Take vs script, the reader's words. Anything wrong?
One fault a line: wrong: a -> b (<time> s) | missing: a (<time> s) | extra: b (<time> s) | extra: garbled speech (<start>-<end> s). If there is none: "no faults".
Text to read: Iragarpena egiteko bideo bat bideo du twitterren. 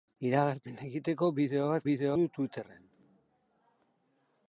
no faults